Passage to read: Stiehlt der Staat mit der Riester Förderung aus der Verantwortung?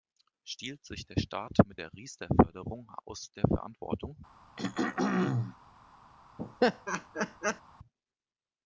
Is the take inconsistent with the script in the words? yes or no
yes